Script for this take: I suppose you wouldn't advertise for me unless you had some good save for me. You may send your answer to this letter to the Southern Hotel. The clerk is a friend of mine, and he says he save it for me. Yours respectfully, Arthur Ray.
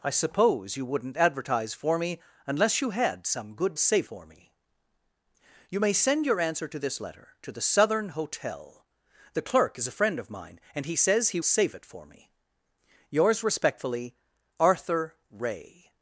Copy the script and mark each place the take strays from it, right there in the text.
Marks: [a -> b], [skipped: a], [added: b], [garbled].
I suppose you wouldn't advertise for me unless you had some good save for me. You may send your answer to this letter to the Southern Hotel. The clerk is a friend of mine, and he says he save it for me. Yours respectfully, Arthur Ray.